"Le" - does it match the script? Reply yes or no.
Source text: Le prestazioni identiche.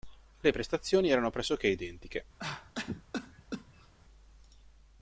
yes